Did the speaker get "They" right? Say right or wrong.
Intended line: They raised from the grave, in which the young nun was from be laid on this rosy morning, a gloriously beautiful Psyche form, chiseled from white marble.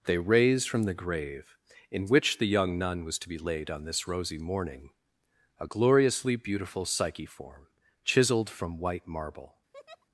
right